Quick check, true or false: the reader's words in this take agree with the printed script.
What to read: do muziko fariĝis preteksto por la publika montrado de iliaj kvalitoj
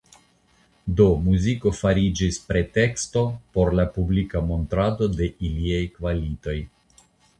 true